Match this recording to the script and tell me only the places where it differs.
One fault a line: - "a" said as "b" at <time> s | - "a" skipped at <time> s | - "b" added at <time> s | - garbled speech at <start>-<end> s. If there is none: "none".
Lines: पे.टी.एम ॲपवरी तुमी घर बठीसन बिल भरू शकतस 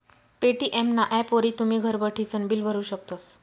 - "ना" added at 0.9 s